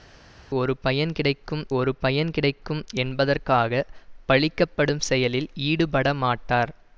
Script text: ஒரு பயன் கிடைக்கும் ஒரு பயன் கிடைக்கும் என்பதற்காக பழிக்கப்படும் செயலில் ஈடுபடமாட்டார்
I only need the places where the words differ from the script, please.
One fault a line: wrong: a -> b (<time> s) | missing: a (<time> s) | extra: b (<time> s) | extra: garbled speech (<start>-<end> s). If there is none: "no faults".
no faults